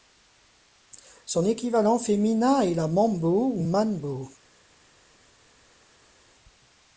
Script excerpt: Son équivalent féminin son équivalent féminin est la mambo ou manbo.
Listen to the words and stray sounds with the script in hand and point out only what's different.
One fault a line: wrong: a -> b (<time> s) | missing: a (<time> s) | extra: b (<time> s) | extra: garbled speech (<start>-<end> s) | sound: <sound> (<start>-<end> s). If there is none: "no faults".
missing: son équivalent féminin (2.6 s)